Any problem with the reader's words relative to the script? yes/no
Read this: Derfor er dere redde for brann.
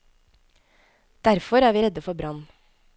yes